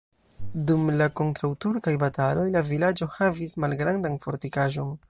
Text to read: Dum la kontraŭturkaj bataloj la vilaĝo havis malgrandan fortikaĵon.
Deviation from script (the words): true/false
false